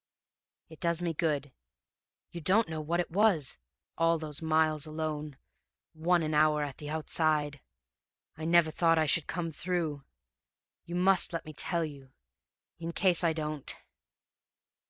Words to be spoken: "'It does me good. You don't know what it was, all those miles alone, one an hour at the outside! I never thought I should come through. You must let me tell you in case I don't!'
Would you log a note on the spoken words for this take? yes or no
no